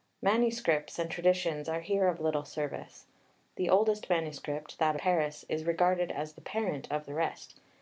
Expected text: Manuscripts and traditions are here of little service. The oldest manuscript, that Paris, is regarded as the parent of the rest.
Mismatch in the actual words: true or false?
false